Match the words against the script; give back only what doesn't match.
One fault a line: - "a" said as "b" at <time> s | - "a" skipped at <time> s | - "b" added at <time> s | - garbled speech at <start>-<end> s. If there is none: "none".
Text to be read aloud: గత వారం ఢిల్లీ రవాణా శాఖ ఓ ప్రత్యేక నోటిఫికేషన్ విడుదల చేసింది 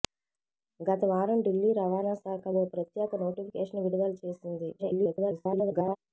- garbled speech at 4.8-6.0 s